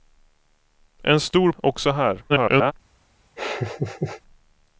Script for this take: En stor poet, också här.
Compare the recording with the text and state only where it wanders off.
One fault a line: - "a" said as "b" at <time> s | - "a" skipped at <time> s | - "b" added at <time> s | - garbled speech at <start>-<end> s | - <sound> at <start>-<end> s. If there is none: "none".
- "poet" skipped at 1.5 s
- garbled speech at 2.3-2.7 s
- laugh at 3.4-4.2 s